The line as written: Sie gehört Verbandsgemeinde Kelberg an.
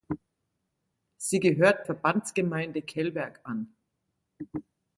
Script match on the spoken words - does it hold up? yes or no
yes